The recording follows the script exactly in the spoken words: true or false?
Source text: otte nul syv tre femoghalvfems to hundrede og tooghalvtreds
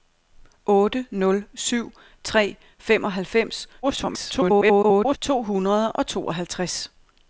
false